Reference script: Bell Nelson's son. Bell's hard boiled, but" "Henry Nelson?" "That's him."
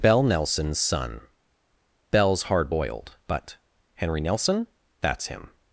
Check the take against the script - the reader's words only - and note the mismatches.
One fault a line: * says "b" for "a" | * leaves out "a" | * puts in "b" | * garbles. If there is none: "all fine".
all fine